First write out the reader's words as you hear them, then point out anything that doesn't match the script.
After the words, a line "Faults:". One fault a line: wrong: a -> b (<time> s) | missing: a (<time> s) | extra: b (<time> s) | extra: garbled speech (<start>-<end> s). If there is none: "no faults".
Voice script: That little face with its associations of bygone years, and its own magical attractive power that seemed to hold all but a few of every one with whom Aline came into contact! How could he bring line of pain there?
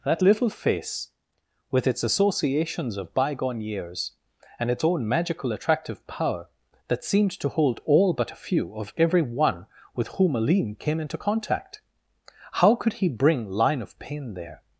That little face with its associations of bygone years, and its own magical attractive power that seemed to hold all but a few of every one with whom Aline came into contact! How could he bring line of pain there?
Faults:
no faults